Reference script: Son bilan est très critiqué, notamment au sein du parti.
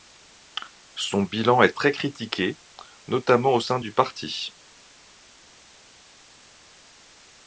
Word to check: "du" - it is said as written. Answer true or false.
true